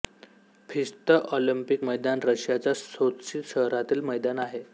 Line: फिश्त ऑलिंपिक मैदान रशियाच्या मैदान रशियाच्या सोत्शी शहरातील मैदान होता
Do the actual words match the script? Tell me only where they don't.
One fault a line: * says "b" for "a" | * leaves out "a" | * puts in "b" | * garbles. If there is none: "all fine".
* leaves out "मैदान रशियाच्या"
* says "आहे" for "होता"